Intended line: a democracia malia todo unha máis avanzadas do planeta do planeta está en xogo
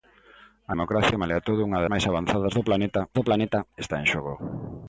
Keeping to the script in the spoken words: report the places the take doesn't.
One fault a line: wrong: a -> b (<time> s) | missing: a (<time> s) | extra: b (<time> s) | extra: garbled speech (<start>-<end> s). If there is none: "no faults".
no faults